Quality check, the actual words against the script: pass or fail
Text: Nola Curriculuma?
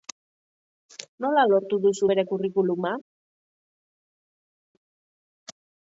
fail